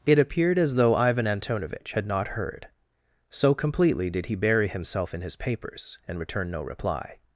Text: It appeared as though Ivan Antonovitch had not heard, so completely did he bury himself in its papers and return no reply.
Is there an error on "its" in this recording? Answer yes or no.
yes